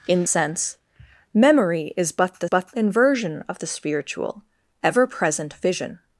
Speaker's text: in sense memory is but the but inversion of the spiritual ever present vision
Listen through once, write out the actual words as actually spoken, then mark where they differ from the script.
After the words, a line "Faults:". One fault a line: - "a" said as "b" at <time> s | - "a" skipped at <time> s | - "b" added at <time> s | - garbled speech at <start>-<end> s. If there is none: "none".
in sense memory is but the but inversion of the spiritual ever present vision
Faults:
none